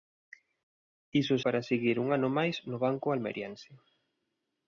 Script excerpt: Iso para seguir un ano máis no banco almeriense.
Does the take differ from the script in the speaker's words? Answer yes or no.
no